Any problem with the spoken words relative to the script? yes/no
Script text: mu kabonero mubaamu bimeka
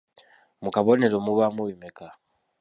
no